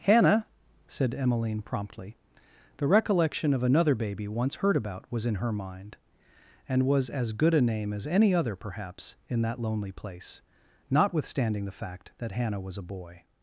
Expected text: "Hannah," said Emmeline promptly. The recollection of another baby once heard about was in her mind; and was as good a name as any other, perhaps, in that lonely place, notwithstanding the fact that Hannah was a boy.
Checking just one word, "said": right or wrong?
right